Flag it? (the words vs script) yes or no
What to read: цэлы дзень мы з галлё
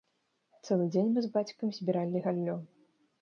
yes